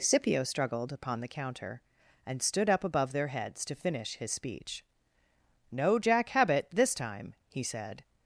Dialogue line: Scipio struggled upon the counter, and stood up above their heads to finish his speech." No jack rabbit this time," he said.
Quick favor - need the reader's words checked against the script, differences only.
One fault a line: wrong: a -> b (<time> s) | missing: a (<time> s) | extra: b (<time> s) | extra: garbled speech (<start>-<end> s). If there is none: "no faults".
wrong: rabbit -> habit (6.3 s)